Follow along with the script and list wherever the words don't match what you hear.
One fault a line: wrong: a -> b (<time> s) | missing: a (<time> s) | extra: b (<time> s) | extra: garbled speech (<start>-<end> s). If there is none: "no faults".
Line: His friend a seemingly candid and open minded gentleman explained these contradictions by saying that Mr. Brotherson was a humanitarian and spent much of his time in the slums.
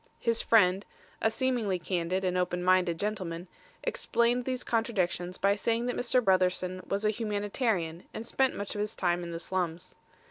no faults